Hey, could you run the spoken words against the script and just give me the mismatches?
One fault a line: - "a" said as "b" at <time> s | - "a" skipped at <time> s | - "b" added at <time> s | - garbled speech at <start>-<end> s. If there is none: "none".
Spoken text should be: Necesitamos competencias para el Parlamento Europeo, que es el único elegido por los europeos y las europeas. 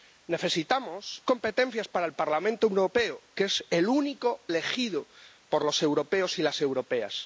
none